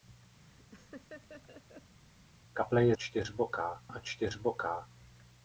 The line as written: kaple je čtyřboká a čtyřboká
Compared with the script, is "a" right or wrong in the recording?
right